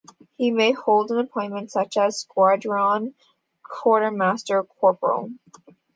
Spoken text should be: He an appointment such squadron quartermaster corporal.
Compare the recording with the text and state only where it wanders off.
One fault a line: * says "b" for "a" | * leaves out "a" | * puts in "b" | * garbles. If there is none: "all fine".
* puts in "may hold"
* puts in "as"